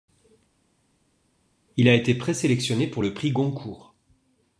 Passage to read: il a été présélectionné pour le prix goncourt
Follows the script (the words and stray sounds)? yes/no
yes